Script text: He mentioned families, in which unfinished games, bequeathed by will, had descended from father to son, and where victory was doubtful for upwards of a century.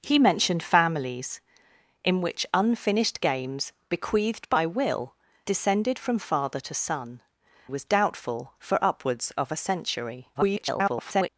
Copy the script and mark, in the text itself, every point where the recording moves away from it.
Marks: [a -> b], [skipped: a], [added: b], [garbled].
He mentioned families, in which unfinished games, bequeathed by will, [skipped: had] descended from father to son, [skipped: and where victory] was doubtful for upwards of a century. [garbled]